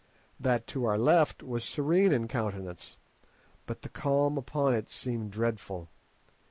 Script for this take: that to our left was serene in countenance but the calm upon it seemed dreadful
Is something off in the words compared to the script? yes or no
no